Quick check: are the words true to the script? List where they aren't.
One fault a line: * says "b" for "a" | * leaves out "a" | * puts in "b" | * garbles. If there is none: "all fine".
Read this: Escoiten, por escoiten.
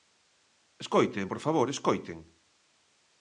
* puts in "favor"